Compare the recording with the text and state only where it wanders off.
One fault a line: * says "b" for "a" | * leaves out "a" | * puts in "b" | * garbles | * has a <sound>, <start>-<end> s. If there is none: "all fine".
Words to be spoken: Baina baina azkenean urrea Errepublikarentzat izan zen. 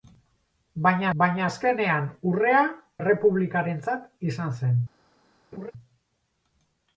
* has a laugh, 5.5-5.7 s